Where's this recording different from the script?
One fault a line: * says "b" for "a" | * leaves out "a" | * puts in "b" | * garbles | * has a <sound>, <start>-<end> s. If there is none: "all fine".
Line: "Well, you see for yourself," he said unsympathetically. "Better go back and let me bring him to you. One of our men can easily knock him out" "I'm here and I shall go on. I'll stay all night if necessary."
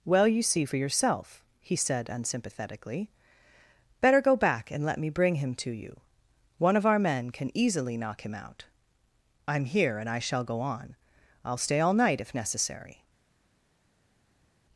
all fine